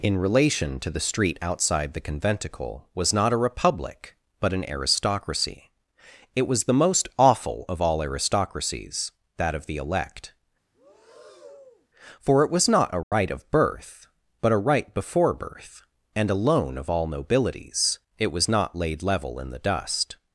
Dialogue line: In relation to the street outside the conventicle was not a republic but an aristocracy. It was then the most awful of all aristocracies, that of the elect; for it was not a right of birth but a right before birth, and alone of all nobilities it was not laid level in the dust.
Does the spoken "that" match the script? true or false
true